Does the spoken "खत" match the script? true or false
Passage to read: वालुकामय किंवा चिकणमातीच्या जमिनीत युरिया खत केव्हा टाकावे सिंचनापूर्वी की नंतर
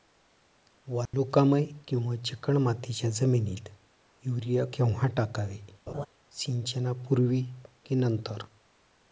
false